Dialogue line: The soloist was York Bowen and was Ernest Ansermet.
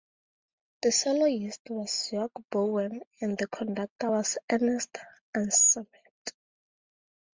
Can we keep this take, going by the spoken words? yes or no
no